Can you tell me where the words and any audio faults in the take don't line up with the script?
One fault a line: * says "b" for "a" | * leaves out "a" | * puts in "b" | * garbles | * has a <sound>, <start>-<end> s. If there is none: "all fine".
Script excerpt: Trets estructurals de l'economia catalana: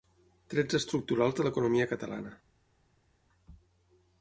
all fine